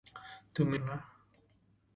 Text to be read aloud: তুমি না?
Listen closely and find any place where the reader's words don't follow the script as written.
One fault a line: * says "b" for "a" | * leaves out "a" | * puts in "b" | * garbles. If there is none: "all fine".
all fine